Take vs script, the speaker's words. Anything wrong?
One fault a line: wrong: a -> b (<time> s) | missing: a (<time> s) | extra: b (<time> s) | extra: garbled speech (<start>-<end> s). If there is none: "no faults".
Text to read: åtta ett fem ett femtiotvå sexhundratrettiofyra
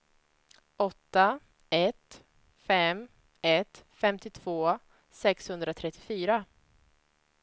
no faults